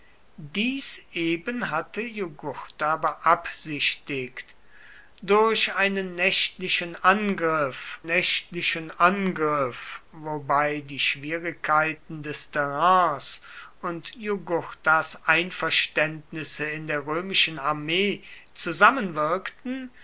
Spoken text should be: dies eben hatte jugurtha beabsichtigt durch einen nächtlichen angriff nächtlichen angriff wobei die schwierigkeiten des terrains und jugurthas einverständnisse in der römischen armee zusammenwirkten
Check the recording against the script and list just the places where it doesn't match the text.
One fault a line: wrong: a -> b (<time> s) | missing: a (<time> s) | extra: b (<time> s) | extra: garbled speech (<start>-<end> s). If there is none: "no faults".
no faults